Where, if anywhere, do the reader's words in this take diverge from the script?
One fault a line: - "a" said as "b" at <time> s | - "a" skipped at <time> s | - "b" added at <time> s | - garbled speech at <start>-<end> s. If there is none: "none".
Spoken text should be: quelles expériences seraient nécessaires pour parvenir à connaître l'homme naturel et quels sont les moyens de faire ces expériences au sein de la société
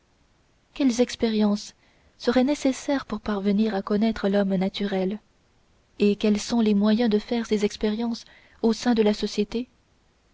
none